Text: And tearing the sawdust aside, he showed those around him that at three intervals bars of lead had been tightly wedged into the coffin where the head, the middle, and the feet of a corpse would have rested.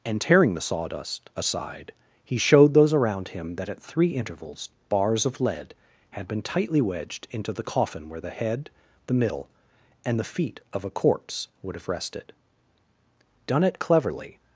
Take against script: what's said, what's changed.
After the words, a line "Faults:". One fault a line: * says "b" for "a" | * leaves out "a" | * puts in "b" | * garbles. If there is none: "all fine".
And tearing the sawdust aside, he showed those around him that at three intervals bars of lead had been tightly wedged into the coffin where the head, the middle, and the feet of a corpse would have rested. "Done it cleverly
Faults:
* puts in "Done it cleverly"